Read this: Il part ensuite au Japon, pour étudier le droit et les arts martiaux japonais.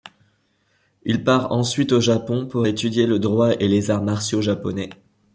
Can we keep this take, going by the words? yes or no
yes